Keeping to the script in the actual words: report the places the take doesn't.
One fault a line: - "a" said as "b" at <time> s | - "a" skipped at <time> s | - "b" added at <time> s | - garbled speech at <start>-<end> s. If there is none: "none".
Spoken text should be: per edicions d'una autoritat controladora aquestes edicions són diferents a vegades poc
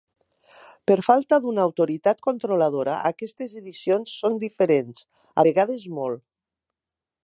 - "edicions" said as "falta" at 1.1 s
- "poc" said as "molt" at 6.0 s